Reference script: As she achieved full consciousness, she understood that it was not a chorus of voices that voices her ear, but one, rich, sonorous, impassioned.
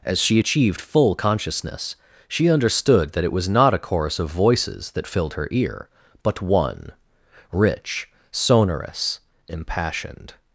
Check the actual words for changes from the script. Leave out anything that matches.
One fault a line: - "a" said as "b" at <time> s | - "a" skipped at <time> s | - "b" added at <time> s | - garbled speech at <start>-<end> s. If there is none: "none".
- "voices" said as "filled" at 5.1 s